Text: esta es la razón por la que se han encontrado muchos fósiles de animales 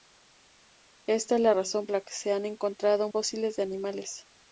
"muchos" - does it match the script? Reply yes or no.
no